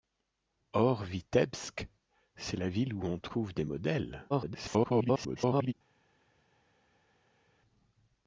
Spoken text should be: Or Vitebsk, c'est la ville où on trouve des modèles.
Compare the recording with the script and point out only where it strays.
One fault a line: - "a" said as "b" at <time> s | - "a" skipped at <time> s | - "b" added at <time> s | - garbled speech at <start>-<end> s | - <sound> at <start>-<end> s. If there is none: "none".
- garbled speech at 4.3-5.7 s